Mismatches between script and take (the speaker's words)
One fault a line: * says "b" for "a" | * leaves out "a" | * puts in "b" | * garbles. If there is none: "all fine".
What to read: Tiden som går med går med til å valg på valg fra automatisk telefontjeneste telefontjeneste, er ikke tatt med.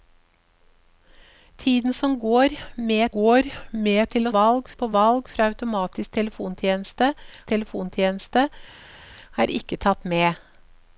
all fine